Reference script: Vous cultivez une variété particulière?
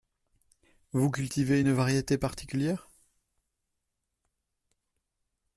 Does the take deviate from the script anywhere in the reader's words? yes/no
no